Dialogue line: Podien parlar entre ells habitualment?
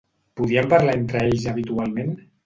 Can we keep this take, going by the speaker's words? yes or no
yes